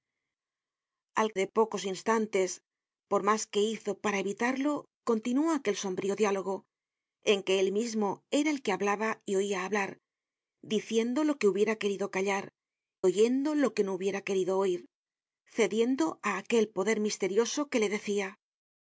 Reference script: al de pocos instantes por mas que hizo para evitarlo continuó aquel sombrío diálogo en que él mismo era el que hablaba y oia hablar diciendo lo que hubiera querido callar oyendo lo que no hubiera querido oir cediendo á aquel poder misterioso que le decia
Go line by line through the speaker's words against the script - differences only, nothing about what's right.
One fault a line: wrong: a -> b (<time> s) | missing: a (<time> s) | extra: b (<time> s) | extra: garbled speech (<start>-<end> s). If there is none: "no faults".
no faults